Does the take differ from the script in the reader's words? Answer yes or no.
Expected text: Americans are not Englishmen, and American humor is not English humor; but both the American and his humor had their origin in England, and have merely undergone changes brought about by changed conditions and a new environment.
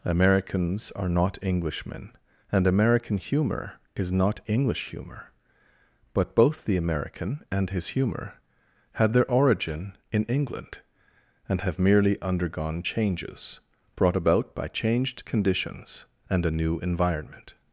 no